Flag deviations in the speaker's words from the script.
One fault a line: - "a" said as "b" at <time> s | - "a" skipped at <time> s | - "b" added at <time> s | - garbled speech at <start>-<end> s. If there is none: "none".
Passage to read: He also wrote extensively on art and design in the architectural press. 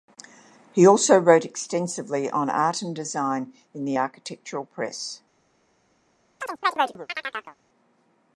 none